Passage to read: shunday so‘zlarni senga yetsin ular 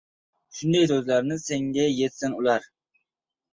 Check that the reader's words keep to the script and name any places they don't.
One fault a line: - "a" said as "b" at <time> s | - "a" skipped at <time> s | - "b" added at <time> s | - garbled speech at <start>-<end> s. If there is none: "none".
none